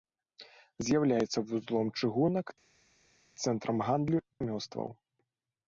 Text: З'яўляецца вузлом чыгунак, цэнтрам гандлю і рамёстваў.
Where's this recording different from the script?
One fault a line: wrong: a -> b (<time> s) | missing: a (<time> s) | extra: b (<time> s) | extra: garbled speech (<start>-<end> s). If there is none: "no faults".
missing: і (4.2 s)